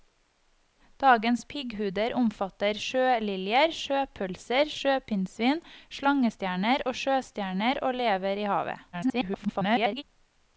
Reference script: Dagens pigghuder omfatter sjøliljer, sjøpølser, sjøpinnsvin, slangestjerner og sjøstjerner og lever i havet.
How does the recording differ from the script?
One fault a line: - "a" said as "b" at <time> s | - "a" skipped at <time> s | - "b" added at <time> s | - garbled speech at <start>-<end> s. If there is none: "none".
- garbled speech at 8.9-10.0 s